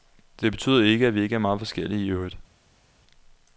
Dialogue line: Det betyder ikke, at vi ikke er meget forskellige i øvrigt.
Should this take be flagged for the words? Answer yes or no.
no